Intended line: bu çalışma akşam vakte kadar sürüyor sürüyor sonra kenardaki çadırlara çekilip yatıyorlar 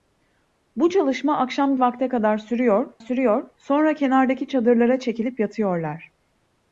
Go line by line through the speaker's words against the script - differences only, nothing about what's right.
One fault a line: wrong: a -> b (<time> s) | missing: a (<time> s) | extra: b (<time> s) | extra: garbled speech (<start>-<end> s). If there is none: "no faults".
no faults